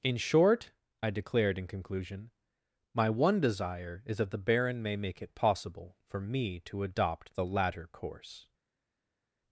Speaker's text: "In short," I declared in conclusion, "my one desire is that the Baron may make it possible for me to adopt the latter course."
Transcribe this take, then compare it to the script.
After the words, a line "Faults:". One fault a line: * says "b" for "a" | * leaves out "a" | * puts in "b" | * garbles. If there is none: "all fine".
"In short," I declared in conclusion, "my one desire is that the Baron may make it possible for me to adopt the latter course."
Faults:
all fine